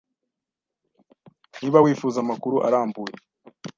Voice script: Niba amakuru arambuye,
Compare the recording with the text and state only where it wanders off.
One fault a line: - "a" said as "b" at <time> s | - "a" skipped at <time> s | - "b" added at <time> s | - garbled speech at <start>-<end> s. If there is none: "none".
- "wifuza" added at 1.8 s